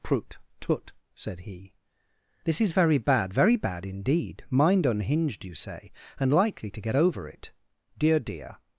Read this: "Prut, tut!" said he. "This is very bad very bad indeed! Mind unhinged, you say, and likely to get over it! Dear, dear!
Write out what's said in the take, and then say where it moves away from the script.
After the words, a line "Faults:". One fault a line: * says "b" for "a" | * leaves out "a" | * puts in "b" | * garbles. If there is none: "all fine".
"Prut, tut!" said he. "This is very bad very bad indeed! Mind unhinged, you say, and likely to get over it! Dear, dear!
Faults:
all fine